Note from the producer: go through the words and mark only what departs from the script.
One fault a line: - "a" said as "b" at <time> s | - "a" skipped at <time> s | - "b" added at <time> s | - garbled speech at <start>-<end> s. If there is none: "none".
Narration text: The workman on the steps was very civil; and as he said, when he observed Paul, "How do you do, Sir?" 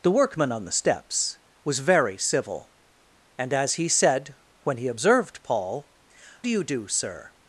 - "How" skipped at 5.9 s